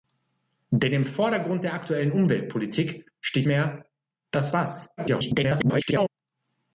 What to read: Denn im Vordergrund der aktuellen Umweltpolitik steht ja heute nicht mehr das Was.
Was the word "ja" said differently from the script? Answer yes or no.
yes